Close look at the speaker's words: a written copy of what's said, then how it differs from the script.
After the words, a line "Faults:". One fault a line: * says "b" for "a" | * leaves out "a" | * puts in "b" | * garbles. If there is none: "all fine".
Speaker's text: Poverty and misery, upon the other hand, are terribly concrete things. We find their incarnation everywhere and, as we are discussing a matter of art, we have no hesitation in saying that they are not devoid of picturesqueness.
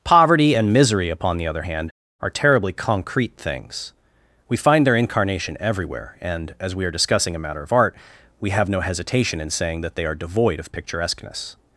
Poverty and misery, upon the other hand, are terribly concrete things. We find their incarnation everywhere and, as we are discussing a matter of art, we have no hesitation in saying that they are devoid of picturesqueness.
Faults:
* leaves out "not"